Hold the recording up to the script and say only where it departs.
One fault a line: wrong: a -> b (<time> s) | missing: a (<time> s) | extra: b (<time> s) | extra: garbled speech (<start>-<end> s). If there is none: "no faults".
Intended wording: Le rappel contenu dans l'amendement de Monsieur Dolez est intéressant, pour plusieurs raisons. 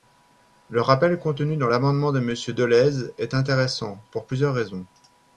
no faults